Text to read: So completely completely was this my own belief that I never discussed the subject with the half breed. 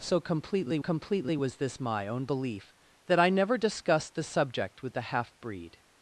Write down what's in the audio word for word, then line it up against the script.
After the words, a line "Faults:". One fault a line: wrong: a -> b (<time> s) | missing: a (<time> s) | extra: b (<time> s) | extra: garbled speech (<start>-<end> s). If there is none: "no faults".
So completely completely was this my own belief that I never discussed the subject with the half breed.
Faults:
no faults